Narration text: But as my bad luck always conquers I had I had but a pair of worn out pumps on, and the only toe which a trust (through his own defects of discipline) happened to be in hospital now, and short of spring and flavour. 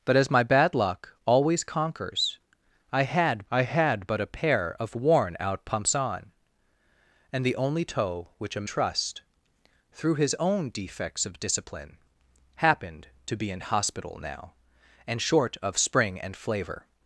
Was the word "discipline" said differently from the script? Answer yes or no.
no